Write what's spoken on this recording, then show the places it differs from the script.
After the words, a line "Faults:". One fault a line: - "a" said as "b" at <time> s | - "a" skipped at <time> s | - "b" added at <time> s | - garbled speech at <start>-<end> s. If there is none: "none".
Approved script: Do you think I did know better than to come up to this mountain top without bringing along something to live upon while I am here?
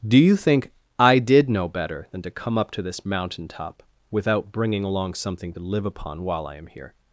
Do you think I did know better than to come up to this mountain top without bringing along something to live upon while I am here?
Faults:
none